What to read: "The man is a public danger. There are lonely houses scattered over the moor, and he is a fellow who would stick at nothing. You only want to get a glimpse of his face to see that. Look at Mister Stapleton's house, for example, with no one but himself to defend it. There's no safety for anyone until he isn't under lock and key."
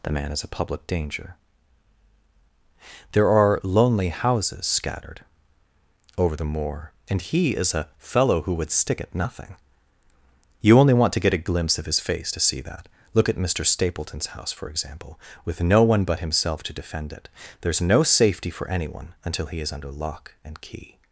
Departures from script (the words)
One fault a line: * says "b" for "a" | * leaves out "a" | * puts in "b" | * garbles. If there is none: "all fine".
* says "is" for "isn't"